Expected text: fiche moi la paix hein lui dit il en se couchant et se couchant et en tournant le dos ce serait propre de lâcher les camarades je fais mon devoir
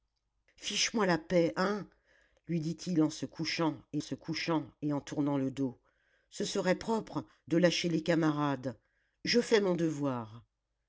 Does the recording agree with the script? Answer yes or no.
yes